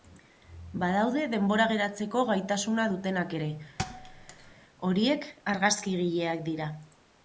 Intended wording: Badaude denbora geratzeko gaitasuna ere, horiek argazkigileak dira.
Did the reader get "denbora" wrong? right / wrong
right